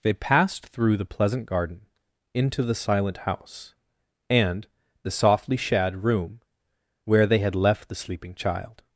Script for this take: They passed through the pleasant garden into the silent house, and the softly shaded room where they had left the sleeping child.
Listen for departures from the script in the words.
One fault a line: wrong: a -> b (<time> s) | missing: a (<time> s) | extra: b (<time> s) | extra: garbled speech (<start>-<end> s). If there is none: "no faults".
wrong: shaded -> shad (5.6 s)